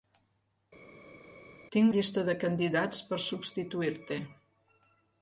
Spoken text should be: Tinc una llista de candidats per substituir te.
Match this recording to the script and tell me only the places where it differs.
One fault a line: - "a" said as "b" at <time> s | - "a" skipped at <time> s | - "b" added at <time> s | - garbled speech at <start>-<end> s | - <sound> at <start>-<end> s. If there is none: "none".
- "una" skipped at 1.9 s